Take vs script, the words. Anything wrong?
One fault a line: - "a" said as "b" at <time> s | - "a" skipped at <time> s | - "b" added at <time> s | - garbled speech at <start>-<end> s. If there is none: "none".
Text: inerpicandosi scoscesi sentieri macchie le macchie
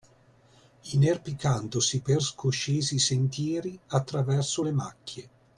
- "per" added at 2.0 s
- "macchie" said as "attraverso" at 3.9 s